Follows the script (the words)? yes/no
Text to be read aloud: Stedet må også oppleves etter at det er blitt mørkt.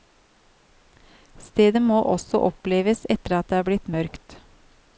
yes